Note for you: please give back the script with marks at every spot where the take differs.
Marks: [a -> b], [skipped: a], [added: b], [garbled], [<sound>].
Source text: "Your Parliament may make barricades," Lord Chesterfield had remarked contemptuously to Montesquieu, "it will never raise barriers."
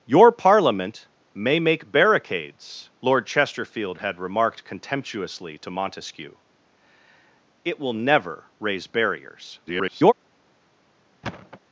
"Your Parliament may make barricades," Lord Chesterfield had remarked contemptuously to Montesquieu, "it will never raise barriers." [garbled] [thud]